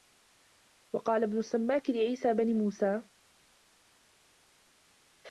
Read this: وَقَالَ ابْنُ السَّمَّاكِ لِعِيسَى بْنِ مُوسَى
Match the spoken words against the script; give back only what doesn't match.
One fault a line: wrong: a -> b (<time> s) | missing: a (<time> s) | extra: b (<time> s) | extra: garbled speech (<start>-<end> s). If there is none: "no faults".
no faults